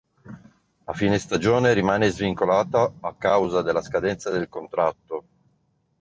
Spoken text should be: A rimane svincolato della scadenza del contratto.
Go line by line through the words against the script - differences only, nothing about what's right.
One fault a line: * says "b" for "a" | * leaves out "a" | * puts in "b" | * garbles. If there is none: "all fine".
* puts in "fine stagione"
* puts in "a causa"